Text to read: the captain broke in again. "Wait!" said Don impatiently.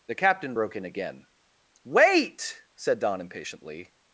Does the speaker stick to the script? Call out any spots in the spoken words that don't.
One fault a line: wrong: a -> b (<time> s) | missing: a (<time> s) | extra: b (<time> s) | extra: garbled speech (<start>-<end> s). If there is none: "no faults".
no faults